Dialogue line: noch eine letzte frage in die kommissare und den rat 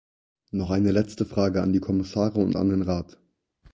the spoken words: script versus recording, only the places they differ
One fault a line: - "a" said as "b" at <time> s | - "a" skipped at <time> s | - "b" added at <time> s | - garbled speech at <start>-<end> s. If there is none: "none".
- "in" said as "an" at 1.6 s
- "an" added at 2.5 s